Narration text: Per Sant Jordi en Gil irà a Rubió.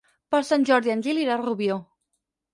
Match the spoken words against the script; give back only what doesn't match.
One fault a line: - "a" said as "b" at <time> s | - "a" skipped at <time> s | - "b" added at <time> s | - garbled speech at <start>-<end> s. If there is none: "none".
none